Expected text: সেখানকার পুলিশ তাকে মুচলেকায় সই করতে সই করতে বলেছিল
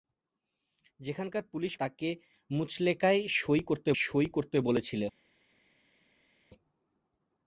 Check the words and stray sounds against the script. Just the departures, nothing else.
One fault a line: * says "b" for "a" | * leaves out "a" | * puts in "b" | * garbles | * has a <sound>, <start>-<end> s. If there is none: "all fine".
all fine